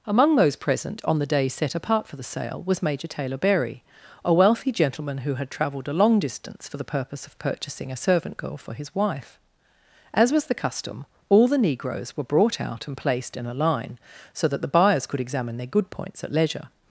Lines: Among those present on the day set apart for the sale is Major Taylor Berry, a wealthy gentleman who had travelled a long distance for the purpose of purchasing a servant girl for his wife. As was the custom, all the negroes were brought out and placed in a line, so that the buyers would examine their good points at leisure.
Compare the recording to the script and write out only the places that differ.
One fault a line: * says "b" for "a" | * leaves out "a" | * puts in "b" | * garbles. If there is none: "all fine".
* says "was" for "is"
* says "could" for "would"